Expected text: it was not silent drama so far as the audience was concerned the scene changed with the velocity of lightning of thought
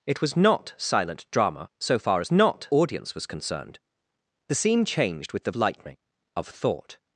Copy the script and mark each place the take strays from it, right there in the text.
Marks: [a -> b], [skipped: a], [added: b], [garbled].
it was not silent drama so far as [the -> not] audience was concerned the scene changed with the [skipped: velocity of] lightning of thought